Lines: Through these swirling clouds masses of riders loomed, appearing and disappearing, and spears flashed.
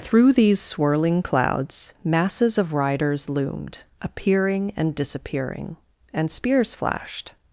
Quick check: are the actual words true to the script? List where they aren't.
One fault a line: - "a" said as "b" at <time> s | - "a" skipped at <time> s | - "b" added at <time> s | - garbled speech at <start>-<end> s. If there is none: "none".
none